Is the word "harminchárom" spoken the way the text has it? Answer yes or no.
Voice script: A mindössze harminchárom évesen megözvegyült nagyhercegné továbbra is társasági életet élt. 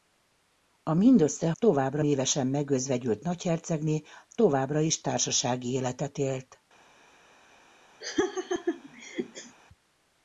no